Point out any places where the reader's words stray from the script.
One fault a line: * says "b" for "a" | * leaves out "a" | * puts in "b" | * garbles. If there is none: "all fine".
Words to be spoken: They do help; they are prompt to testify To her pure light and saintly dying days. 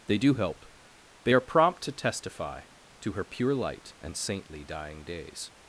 all fine